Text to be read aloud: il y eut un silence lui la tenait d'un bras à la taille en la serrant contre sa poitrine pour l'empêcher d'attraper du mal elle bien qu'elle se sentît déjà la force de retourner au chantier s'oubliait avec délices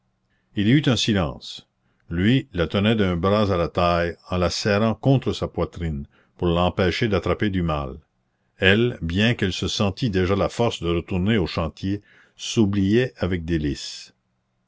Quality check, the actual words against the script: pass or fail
pass